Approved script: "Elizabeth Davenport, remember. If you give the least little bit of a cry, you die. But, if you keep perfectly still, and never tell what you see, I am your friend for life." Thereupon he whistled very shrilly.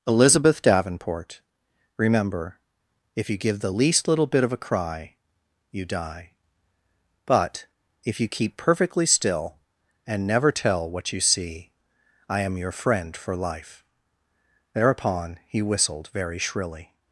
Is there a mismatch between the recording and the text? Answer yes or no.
no